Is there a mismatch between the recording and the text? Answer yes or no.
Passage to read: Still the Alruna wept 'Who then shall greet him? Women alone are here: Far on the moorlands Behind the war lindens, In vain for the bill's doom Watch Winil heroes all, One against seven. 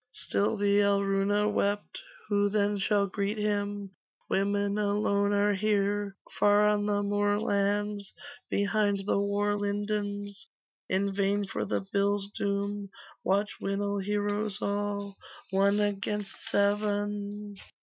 no